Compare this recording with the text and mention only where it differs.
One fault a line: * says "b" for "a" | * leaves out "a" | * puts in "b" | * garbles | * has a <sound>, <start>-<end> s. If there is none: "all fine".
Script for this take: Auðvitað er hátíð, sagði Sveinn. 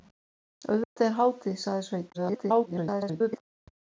* has a dropout, 0.8-1.0 s
* garbles